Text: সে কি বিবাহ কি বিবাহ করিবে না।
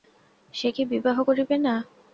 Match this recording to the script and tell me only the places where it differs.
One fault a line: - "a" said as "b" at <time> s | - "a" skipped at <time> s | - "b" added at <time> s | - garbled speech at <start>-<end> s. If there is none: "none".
- "কি বিবাহ" skipped at 1.2 s